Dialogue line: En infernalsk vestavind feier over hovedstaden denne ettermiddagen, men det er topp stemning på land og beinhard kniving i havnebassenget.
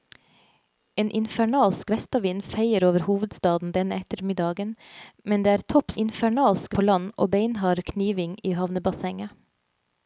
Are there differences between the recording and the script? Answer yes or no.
yes